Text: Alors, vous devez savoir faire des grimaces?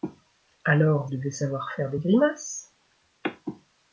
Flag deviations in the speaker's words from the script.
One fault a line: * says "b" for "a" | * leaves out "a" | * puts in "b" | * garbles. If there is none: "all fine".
* leaves out "vous"